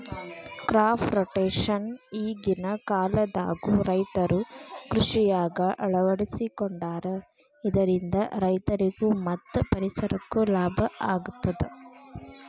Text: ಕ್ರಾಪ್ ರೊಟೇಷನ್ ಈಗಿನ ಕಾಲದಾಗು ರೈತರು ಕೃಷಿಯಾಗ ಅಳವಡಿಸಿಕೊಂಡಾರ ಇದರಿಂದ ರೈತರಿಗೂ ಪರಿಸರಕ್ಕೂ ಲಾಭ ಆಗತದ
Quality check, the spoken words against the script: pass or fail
fail